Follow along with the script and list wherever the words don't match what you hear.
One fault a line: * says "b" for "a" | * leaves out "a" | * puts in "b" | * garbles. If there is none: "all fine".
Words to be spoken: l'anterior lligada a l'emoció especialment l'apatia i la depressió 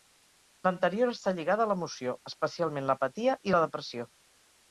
* puts in "està"